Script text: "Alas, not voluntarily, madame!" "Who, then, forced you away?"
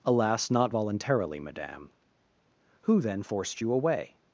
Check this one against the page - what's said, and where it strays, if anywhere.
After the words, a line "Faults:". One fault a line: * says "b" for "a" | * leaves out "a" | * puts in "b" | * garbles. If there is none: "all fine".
"Alas, not voluntarily, madame!" "Who, then, forced you away?"
Faults:
all fine